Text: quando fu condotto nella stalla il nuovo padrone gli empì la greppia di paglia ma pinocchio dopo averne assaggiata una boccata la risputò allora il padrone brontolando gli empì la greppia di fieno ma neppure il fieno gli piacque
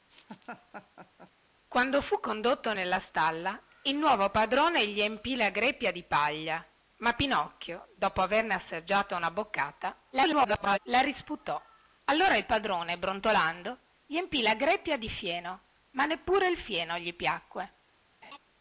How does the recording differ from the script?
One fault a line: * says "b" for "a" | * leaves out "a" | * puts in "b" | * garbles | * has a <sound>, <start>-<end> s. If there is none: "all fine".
* has a laugh, 0.1-1.3 s
* garbles
* has a laugh, 18.2-18.4 s